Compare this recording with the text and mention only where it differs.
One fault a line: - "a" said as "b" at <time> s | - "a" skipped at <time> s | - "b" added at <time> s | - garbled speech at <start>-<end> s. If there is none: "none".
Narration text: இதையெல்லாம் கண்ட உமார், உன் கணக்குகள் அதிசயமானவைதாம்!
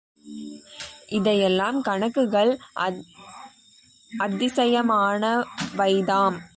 - "கண்ட உமார் உன்" skipped at 1.8 s